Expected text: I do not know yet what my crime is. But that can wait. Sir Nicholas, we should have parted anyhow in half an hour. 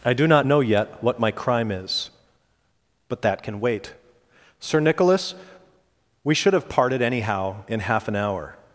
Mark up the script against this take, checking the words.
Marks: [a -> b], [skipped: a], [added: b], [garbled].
I do not know yet what my crime is. But that can wait. Sir Nicholas, we should have parted anyhow in half an hour.